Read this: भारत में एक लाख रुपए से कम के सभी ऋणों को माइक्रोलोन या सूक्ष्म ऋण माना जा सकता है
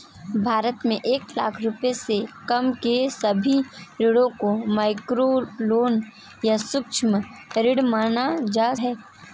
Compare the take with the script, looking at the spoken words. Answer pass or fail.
fail